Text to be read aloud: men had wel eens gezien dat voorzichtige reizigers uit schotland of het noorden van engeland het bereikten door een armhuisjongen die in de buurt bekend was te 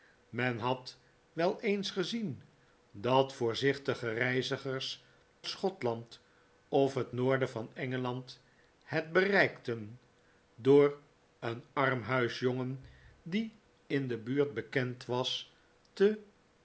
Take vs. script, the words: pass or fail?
fail